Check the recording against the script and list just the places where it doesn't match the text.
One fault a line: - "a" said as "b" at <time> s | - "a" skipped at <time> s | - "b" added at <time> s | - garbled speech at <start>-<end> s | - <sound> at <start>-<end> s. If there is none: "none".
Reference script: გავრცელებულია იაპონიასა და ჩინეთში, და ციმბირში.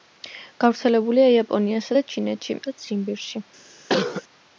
- cough at 3.9-4.2 s